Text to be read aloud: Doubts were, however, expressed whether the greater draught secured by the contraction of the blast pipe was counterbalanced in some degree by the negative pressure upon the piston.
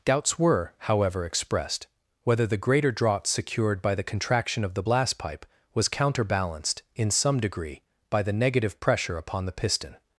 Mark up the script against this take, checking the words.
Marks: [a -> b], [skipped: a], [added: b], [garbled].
Doubts were, however, expressed whether the greater draught secured by the contraction of the blast pipe was counterbalanced in some degree by the negative pressure upon the piston.